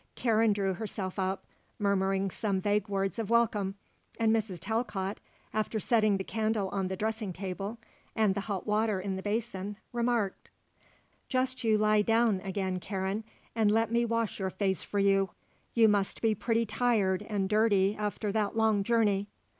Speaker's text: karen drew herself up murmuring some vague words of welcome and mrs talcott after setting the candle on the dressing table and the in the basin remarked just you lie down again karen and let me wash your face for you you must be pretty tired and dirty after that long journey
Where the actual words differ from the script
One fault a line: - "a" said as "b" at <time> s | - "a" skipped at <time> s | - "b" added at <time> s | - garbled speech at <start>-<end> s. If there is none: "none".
- "hot water" added at 8.5 s